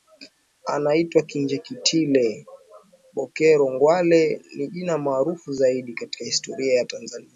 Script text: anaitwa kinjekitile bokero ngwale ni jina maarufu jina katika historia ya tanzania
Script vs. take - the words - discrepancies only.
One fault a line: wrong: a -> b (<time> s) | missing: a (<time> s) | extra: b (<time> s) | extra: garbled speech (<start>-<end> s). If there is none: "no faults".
wrong: jina -> zaidi (5.5 s)